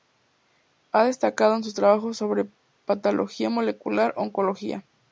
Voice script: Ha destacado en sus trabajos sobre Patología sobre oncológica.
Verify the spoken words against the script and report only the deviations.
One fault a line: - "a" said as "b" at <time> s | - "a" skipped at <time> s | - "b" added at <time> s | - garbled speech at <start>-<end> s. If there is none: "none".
- "sobre" said as "molecular" at 3.5 s